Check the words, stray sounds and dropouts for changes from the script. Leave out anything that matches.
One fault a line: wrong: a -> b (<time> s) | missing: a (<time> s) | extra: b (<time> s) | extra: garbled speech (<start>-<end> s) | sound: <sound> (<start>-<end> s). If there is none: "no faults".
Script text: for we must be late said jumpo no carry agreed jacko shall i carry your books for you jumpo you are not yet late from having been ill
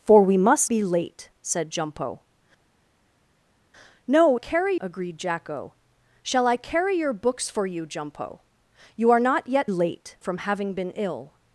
no faults